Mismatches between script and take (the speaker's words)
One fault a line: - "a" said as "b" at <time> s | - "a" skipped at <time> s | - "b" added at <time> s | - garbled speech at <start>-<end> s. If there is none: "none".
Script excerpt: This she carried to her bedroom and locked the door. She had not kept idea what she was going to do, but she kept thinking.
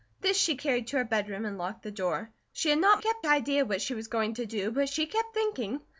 none